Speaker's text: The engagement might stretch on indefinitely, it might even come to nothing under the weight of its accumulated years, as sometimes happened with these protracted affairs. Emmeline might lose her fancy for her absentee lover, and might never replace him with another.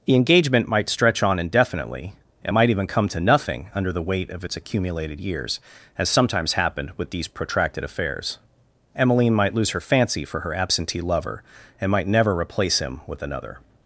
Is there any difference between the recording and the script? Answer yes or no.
no